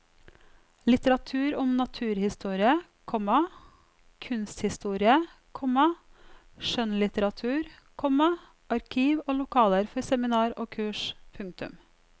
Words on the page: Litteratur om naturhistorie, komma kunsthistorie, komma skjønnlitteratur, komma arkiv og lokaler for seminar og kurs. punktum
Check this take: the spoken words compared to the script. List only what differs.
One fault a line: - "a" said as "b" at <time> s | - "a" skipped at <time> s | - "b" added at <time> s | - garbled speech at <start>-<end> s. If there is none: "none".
none